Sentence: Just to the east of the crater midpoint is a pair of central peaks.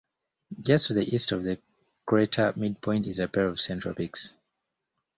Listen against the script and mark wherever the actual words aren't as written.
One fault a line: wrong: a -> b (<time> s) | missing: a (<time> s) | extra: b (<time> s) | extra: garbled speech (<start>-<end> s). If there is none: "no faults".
no faults